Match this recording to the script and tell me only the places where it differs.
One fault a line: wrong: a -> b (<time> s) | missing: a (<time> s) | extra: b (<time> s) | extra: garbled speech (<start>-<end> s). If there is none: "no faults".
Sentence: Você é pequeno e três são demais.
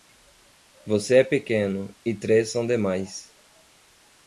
no faults